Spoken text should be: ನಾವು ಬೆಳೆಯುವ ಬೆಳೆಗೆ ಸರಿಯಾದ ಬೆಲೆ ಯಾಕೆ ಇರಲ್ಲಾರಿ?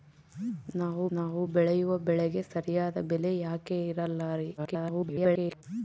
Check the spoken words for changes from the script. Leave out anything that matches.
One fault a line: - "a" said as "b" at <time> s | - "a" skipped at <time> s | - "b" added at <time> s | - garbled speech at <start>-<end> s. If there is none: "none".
- "ನಾವು" added at 1.1 s
- garbled speech at 4.6-5.6 s